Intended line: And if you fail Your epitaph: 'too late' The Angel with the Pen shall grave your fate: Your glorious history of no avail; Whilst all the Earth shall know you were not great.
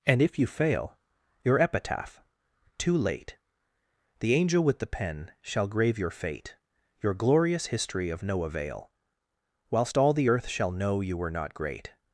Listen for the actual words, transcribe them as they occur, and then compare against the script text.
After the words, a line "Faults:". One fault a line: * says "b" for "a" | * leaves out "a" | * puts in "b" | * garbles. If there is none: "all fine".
And if you fail Your epitaph: 'too late' The Angel with the Pen shall grave your fate: Your glorious history of no avail; Whilst all the Earth shall know you were not great.
Faults:
all fine